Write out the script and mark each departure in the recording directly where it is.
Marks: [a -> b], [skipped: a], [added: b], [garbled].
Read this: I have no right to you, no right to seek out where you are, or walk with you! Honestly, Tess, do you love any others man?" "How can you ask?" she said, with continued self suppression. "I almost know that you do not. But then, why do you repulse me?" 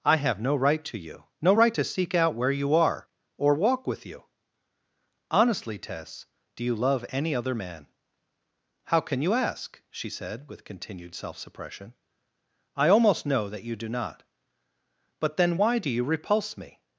I have no right to you, no right to seek out where you are, or walk with you! Honestly, Tess, do you love any [others -> other] man?" "How can you ask?" she said, with continued self suppression. "I almost know that you do not. But then, why do you repulse me?"